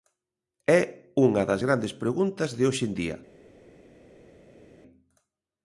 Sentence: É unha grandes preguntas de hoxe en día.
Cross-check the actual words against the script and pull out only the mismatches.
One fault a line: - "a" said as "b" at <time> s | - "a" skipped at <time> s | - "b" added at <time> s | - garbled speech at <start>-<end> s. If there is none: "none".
- "das" added at 1.5 s